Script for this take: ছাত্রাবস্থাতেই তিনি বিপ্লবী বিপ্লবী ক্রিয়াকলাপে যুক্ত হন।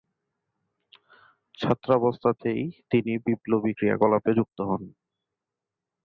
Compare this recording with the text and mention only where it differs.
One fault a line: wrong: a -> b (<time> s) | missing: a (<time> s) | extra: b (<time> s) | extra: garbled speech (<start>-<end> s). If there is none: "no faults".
missing: বিপ্লবী (3.7 s)